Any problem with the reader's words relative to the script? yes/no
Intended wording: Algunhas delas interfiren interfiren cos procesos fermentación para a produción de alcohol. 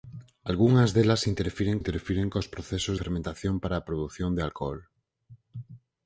no